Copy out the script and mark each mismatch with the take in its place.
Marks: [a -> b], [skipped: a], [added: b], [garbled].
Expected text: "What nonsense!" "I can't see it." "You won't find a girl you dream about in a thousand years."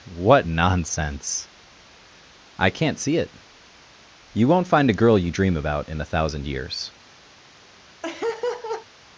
"What nonsense!" "I can't see it." "You won't find a girl you dream about in a thousand years."